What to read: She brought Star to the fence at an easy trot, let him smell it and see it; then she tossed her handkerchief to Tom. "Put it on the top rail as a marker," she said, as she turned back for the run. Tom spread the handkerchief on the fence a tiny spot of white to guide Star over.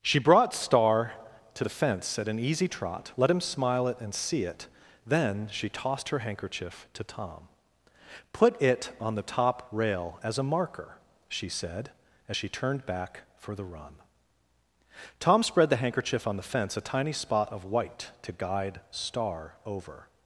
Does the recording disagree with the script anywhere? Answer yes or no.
yes